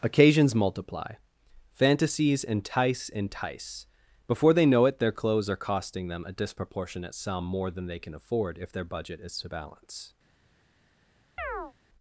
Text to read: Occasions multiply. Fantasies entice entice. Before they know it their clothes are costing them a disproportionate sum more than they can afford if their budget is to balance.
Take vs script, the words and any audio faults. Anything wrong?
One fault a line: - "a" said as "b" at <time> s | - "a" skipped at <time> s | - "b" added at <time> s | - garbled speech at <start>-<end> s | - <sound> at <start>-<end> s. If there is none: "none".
- chirp at 11.4-11.7 s